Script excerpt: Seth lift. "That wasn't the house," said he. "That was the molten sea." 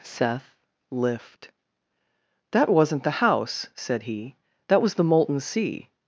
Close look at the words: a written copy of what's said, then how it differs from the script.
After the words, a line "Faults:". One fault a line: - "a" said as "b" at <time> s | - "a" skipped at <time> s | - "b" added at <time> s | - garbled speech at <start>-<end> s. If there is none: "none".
Seth lift. "That wasn't the house," said he. "That was the molten sea."
Faults:
none